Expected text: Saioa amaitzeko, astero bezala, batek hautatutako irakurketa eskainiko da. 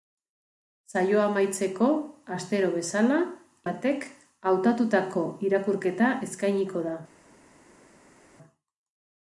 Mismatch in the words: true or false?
false